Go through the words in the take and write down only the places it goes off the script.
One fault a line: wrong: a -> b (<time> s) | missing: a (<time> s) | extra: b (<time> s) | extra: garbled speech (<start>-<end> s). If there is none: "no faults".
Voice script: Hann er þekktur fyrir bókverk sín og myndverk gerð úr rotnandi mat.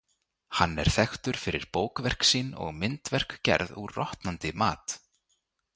no faults